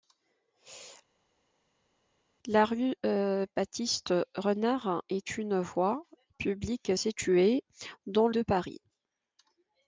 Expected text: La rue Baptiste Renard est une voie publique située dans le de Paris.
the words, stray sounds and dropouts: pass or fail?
fail